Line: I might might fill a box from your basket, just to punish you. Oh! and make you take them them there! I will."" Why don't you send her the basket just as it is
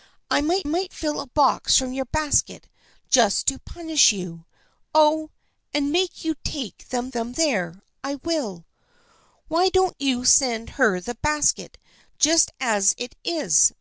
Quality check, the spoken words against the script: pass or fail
pass